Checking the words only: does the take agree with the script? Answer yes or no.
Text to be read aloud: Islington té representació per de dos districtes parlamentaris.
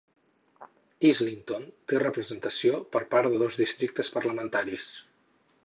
no